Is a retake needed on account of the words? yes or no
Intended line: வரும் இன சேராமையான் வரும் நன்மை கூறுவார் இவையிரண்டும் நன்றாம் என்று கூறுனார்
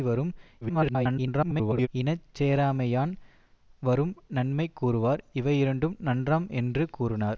yes